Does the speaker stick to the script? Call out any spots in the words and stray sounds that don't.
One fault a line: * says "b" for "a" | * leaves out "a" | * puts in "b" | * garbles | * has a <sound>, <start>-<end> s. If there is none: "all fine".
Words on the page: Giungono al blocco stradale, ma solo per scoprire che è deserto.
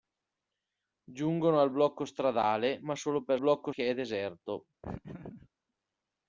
* says "blocco" for "scoprire"
* has a laugh, 4.8-5.5 s